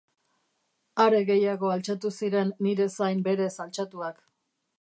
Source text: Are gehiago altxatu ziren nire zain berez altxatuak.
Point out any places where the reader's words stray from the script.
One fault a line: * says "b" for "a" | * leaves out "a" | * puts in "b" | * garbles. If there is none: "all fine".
all fine